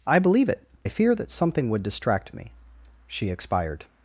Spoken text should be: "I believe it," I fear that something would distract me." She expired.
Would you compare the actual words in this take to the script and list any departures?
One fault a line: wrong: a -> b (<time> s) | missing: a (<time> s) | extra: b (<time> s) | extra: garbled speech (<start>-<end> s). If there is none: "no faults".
no faults